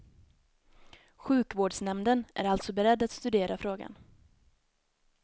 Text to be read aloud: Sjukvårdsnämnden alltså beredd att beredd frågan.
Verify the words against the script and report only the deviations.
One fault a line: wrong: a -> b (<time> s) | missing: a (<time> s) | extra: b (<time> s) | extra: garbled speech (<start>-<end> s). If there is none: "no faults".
extra: är (2.4 s)
wrong: beredd -> studera (3.1 s)